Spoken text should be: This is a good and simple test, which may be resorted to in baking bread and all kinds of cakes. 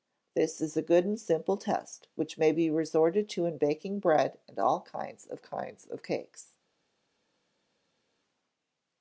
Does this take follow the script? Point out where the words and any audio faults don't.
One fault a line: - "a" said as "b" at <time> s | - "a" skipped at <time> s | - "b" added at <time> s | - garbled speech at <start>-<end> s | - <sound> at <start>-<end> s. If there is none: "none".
- "kinds of" added at 5.4 s